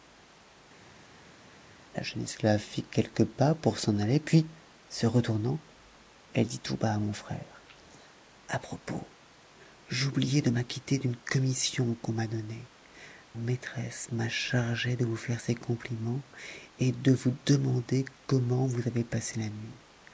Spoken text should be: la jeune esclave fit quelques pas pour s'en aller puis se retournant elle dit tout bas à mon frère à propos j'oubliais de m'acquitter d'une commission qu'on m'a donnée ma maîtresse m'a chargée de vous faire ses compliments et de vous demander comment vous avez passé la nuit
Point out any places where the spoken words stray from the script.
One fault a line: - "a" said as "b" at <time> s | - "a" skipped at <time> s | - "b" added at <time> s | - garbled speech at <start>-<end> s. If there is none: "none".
- "ma" skipped at 12.7 s